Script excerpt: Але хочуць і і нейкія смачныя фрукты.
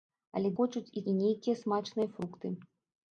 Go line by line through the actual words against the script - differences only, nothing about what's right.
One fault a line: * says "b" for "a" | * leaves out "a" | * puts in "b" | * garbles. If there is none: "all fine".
all fine